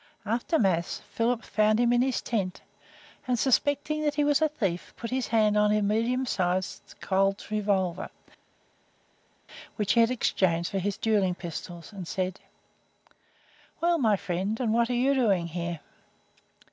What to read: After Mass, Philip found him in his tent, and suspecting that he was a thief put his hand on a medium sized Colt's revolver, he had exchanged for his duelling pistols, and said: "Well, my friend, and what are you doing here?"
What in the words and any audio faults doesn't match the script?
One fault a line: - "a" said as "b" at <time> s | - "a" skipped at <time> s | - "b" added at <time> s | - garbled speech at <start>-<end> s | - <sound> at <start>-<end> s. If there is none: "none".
- "which" added at 9.8 s